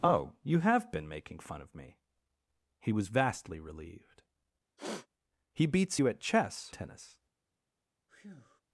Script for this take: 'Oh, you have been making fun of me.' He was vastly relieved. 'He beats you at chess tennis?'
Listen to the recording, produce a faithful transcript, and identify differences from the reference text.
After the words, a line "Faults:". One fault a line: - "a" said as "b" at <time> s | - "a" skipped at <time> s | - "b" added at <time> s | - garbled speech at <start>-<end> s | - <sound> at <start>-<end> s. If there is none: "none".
'Oh, you have been making fun of me.' He was vastly relieved. 'He beats you at chess tennis?'
Faults:
- sniff at 4.8-5.1 s
- breath at 8.1-8.6 s